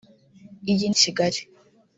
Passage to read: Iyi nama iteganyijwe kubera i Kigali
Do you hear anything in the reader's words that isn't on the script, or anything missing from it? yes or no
yes